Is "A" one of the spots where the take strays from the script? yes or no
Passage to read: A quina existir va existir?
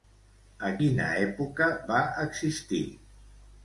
no